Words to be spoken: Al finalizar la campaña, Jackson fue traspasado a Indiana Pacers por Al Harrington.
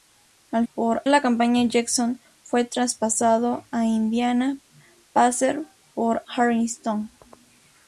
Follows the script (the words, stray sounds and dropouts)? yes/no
no